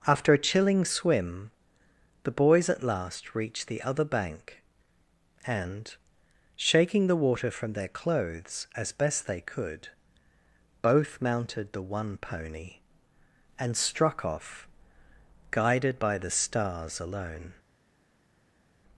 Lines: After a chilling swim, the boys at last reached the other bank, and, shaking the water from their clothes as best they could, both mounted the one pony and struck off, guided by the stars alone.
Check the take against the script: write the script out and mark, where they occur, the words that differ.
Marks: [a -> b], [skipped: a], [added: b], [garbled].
After a chilling swim, the boys at last reached the other bank, and, shaking the water from their clothes as best they could, both mounted the one pony and struck off, guided by the stars alone.